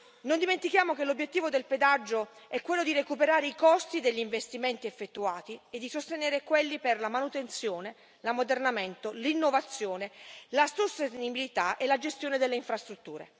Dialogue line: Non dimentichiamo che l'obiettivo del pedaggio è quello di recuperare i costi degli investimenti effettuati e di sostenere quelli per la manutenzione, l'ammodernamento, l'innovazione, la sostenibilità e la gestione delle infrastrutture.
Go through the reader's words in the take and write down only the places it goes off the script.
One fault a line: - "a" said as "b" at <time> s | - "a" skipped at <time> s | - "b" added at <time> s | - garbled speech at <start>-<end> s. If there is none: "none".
none